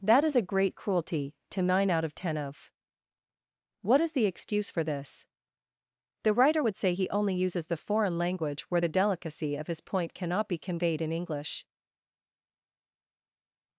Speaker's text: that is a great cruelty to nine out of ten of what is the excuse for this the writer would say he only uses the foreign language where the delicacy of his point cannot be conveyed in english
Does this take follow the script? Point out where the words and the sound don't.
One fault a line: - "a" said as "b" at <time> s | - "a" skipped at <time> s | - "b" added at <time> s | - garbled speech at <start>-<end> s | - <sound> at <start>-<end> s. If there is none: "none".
none